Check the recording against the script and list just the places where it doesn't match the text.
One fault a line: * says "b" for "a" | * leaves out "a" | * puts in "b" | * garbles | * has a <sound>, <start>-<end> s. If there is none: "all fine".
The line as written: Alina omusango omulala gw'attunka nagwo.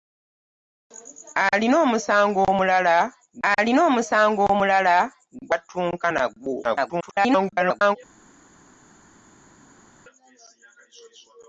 * puts in "alina omusango omulala"
* garbles